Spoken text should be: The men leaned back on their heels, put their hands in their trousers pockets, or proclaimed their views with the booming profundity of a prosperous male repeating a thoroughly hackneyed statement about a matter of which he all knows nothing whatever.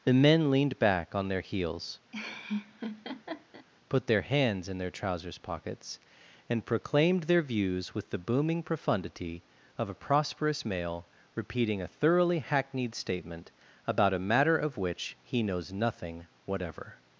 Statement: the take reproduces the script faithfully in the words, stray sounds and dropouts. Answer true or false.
false